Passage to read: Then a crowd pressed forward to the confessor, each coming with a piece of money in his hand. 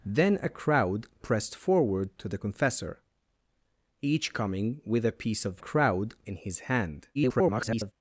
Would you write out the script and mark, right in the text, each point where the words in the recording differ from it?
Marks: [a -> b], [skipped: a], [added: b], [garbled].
Then a crowd pressed forward to the confessor, each coming with a piece of [money -> crowd] in his hand. [garbled]